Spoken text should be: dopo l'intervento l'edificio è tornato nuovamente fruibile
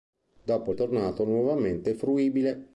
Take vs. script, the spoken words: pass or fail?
fail